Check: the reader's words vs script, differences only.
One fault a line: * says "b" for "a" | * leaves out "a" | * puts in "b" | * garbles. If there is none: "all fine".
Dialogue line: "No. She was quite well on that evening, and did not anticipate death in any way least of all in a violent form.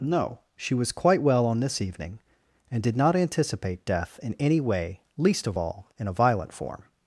* says "this" for "that"